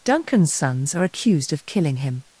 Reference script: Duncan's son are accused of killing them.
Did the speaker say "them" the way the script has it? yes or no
no